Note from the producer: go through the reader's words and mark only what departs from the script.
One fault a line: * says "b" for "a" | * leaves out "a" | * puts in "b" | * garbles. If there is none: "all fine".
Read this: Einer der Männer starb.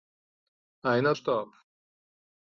* leaves out "der Männer"